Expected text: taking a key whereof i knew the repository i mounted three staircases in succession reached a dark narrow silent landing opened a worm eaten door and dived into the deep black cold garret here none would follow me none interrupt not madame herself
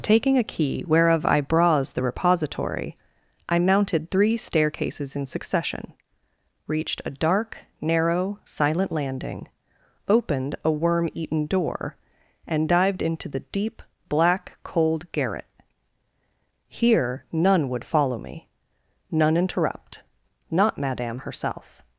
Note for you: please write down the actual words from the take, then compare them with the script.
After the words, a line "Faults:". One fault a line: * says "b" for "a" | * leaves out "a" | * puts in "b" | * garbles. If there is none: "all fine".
taking a key whereof i bras the repository i mounted three staircases in succession reached a dark narrow silent landing opened a worm eaten door and dived into the deep black cold garret here none would follow me none interrupt not madame herself
Faults:
* says "bras" for "knew"